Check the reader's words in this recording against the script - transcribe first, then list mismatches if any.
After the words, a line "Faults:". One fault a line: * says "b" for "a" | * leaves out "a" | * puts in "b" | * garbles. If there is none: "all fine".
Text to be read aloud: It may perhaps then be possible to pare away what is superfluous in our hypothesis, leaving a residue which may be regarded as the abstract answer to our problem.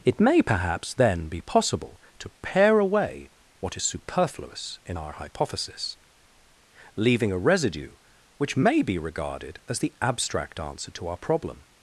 It may perhaps then be possible to pare away what is superfluous in our hypothesis, leaving a residue which may be regarded as the abstract answer to our problem.
Faults:
all fine